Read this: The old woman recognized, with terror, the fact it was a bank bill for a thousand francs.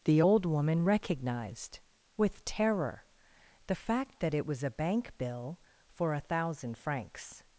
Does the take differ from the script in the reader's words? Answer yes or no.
yes